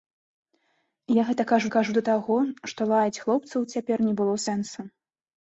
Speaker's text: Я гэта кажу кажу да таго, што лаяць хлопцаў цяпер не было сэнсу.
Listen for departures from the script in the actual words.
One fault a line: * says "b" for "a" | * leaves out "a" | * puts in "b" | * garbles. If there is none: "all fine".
all fine